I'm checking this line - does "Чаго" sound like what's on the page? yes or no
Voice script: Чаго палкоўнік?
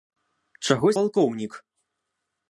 yes